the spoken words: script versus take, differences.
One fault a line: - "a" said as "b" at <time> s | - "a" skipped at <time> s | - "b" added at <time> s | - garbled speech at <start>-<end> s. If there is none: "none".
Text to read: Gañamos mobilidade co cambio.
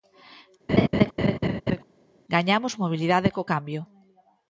none